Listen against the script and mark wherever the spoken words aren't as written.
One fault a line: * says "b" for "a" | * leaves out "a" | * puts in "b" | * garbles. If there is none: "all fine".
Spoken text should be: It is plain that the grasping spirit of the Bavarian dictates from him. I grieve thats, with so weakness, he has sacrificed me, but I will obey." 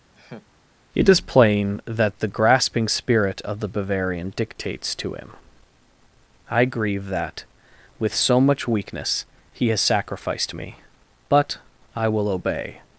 * says "to" for "from"
* says "that" for "thats"
* puts in "much"